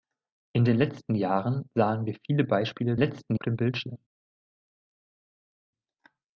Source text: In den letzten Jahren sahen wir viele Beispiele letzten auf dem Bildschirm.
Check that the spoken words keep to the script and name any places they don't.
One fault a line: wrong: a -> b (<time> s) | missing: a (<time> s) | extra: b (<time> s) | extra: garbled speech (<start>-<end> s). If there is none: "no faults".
no faults